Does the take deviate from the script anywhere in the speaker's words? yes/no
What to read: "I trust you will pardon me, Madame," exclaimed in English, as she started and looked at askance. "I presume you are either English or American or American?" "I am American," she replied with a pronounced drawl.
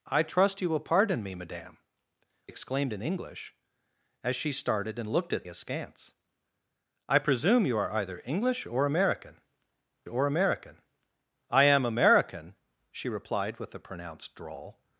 no